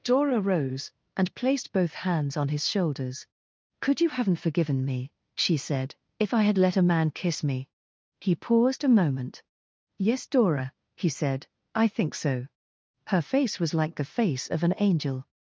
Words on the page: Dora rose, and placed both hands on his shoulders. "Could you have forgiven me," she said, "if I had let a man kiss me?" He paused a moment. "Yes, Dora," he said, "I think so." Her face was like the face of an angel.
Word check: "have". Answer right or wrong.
wrong